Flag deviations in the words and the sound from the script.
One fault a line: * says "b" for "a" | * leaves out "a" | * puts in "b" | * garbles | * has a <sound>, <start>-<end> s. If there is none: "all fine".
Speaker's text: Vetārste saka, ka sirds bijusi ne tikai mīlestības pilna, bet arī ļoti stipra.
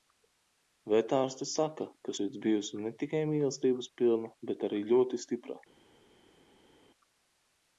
all fine